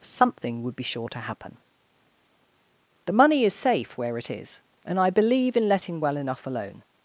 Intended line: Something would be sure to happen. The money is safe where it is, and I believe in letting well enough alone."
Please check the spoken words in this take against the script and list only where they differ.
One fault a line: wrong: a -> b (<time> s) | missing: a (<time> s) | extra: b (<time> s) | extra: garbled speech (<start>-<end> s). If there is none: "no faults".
no faults